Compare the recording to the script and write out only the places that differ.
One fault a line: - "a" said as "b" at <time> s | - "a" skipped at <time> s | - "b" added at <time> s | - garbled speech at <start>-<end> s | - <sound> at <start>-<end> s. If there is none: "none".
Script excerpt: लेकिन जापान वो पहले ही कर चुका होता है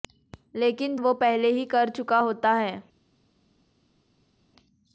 - "जापान" skipped at 0.9 s